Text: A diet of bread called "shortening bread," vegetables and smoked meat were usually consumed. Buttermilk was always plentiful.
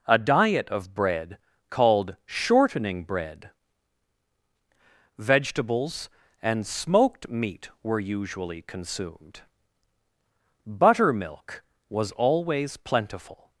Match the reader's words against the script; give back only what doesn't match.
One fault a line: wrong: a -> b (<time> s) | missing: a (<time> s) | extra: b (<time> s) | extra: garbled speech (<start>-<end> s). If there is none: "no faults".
no faults